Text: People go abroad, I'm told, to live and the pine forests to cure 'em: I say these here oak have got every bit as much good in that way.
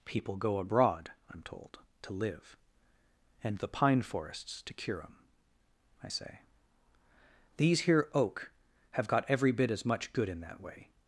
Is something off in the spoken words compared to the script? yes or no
no